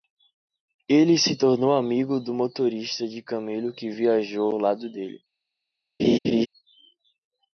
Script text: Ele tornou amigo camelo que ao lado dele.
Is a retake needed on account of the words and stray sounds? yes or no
yes